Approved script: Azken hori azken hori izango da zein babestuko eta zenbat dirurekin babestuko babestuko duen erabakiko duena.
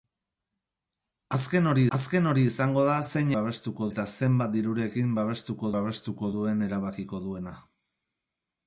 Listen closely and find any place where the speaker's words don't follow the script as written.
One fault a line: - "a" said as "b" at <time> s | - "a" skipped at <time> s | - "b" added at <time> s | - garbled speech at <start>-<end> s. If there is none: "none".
none